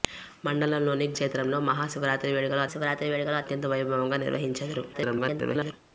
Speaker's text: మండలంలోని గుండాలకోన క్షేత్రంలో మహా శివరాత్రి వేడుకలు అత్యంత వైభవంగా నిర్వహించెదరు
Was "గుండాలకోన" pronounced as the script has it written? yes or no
no